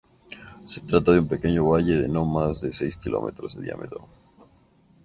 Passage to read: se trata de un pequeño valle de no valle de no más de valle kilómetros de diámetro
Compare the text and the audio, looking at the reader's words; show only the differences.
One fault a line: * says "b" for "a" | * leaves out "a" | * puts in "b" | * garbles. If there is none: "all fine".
* leaves out "valle de no"
* says "seis" for "valle"